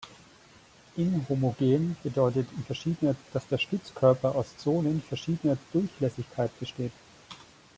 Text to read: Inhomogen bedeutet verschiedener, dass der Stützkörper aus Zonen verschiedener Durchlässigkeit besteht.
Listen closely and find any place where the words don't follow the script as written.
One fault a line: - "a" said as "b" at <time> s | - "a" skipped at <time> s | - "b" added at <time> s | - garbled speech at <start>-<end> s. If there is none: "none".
none